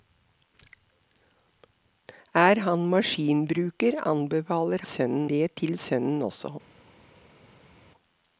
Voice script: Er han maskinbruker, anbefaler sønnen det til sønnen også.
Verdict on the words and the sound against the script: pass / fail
pass